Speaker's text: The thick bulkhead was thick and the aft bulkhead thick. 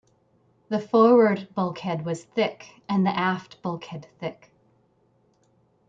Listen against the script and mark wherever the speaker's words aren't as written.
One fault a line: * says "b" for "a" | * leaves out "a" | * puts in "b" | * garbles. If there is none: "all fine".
* says "forward" for "thick"